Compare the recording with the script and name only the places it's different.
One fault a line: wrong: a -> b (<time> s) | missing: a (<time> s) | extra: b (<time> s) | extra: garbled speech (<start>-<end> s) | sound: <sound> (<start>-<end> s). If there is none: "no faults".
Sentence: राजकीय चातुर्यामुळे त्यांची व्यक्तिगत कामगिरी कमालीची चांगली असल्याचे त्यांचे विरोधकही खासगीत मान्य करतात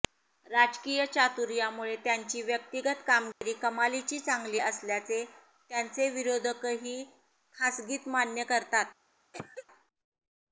sound: dropout (3.3-3.4 s)
sound: cough (9.3-9.7 s)